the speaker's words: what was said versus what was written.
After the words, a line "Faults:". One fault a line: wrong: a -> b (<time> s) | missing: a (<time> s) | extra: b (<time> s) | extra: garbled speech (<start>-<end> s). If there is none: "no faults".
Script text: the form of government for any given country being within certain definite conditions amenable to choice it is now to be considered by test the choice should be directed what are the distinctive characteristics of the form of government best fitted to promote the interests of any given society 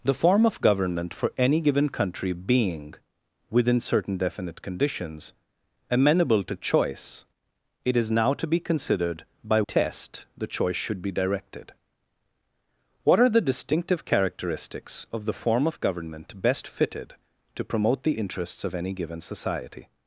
the form of government for any given country being within certain definite conditions amenable to choice it is now to be considered by test the choice should be directed what are the distinctive characteristics of the form of government best fitted to promote the interests of any given society
Faults:
no faults